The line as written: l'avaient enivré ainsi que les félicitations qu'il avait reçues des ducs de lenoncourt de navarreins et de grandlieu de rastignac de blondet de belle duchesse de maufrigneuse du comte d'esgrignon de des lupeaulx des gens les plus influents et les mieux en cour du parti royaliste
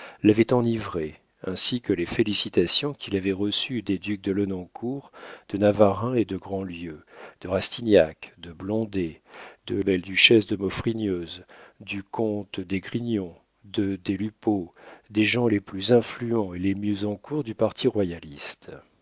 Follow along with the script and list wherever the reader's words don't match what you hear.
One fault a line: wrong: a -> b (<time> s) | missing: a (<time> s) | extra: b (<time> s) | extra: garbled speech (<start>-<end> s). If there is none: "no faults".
no faults